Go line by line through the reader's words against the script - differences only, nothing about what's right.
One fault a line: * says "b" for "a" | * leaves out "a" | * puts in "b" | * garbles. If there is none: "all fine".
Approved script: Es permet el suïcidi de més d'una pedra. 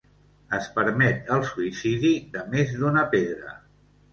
all fine